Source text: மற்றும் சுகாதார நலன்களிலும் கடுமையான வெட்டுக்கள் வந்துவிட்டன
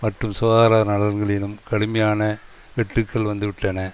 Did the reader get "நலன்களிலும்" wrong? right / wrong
right